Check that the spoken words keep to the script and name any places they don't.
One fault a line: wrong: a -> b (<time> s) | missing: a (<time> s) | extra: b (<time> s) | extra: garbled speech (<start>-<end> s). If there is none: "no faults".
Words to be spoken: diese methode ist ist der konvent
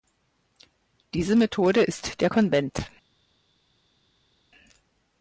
missing: ist (2.2 s)